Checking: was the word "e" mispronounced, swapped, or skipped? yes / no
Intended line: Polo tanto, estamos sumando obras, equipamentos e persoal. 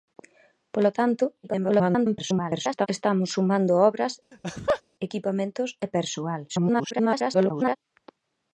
no